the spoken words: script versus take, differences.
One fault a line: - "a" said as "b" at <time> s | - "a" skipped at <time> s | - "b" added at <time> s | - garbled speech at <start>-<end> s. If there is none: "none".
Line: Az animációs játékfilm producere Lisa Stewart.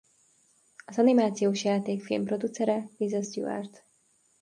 none